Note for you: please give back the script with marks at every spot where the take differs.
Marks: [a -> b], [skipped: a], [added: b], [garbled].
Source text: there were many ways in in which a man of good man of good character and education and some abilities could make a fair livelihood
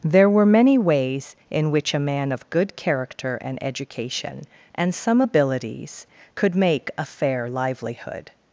there were many ways in [skipped: in] which a man of good [skipped: man of good] character and education and some abilities could make a fair livelihood